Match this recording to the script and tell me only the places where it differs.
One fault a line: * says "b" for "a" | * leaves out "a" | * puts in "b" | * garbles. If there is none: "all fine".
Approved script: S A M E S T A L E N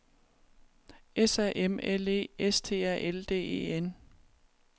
* puts in "L"
* puts in "D"